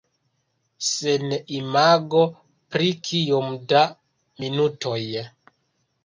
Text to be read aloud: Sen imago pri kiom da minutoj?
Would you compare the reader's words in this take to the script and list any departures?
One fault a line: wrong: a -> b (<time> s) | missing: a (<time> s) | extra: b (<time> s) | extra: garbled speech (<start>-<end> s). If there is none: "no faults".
no faults